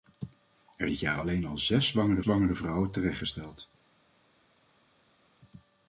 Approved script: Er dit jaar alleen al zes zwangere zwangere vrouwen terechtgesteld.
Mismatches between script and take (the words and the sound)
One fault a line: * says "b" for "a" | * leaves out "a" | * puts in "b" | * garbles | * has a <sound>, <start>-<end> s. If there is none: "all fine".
all fine